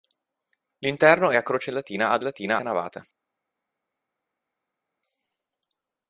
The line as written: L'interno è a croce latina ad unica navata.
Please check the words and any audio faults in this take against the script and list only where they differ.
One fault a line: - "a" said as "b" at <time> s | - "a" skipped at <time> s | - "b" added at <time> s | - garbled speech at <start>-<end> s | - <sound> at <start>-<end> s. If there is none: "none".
- "unica" said as "latina" at 2.2 s